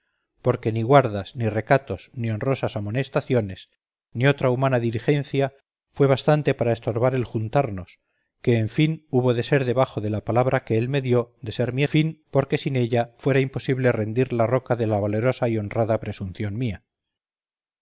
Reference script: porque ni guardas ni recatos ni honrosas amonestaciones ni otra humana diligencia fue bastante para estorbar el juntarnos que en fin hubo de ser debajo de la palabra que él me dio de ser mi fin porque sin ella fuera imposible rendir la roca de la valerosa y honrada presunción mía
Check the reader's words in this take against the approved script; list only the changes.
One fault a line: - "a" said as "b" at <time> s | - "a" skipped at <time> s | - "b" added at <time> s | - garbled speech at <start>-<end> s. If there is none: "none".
none